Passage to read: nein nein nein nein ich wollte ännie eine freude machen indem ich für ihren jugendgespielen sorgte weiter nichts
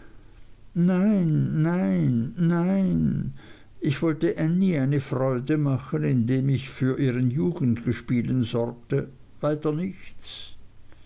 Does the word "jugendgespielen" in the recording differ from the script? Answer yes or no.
no